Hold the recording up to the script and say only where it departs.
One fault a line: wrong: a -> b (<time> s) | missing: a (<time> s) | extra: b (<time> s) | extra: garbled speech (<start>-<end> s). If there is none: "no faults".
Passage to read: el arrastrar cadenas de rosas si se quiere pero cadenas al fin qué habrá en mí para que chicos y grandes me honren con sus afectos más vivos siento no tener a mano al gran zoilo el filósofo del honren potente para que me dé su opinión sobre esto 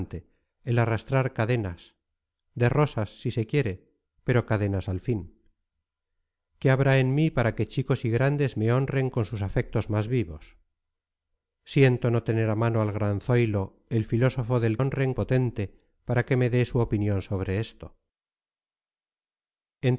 no faults